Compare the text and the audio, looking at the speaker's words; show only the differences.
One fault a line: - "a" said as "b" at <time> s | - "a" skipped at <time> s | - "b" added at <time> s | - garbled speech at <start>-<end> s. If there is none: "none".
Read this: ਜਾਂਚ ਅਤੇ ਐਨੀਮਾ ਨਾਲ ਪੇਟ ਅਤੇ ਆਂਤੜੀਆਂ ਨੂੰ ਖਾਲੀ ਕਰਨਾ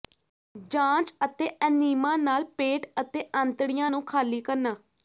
none